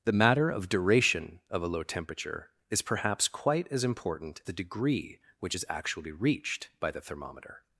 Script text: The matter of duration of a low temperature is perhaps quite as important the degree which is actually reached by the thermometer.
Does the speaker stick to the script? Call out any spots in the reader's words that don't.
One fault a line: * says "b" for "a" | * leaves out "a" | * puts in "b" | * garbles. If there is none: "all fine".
all fine